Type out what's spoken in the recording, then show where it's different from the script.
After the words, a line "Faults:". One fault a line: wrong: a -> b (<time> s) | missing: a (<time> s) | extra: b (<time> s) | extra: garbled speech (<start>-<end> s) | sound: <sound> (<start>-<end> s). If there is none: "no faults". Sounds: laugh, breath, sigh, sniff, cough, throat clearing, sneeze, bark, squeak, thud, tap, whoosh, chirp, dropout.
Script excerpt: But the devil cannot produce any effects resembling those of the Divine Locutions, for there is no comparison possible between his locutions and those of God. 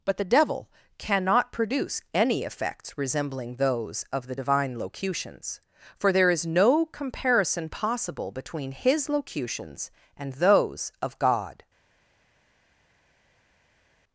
But the devil cannot produce any effects resembling those of the Divine Locutions, for there is no comparison possible between his locutions and those of God.
Faults:
no faults